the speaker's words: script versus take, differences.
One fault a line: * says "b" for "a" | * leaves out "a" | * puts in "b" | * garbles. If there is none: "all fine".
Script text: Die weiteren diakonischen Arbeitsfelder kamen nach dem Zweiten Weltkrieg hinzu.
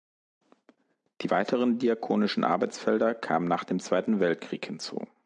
all fine